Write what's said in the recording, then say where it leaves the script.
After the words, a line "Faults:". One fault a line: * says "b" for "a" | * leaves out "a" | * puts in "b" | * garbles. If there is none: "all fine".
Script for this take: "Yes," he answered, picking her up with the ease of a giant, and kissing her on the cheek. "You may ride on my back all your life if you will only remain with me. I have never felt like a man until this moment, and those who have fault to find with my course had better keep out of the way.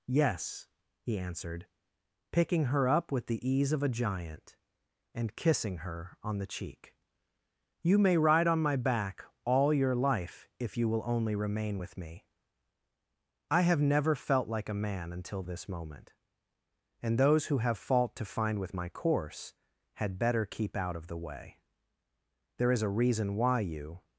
"Yes," he answered, picking her up with the ease of a giant, and kissing her on the cheek. "You may ride on my back all your life if you will only remain with me. I have never felt like a man until this moment, and those who have fault to find with my course had better keep out of the way. There is a reason why you
Faults:
* puts in "There is a reason why you"